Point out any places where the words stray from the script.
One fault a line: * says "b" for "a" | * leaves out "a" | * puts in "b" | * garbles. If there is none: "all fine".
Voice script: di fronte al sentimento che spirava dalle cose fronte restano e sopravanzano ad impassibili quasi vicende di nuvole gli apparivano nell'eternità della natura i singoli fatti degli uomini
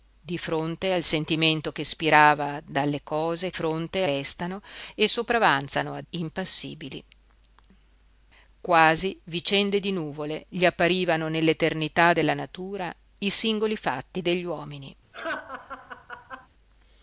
all fine